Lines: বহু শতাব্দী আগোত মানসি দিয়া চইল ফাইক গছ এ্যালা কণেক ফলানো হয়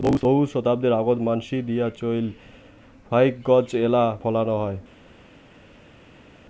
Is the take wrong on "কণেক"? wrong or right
wrong